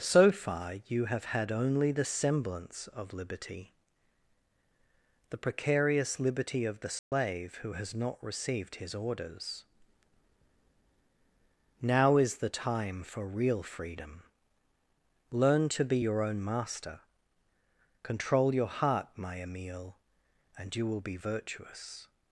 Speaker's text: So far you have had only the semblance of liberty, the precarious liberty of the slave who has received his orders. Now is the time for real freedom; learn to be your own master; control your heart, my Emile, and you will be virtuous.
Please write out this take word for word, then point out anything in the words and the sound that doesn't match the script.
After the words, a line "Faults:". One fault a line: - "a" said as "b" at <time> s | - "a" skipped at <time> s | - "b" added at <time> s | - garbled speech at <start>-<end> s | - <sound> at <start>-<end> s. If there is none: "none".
So far you have had only the semblance of liberty, the precarious liberty of the slave who has not received his orders. Now is the time for real freedom; learn to be your own master; control your heart, my Emile, and you will be virtuous.
Faults:
- dropout at 7.0-7.1 s
- "not" added at 7.9 s